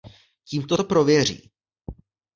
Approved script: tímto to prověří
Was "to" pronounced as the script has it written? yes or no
yes